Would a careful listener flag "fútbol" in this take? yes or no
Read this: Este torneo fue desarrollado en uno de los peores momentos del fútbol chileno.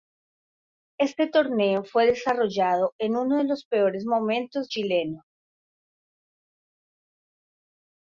yes